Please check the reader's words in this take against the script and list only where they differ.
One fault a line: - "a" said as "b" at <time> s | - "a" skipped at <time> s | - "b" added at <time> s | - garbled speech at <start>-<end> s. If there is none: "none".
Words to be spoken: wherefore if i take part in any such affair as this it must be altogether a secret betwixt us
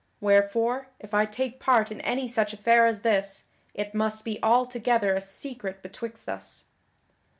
none